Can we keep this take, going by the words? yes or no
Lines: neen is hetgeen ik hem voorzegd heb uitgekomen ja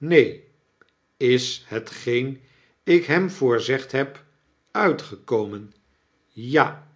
yes